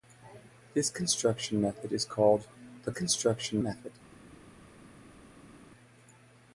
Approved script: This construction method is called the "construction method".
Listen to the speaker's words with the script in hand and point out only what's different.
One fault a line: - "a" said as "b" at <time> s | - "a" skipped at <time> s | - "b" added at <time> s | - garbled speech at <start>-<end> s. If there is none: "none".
none